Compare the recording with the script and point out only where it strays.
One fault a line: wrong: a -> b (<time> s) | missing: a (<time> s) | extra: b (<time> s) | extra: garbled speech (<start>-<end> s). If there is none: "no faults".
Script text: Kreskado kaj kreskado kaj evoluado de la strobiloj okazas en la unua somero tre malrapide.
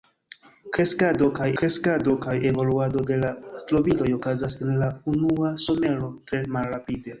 no faults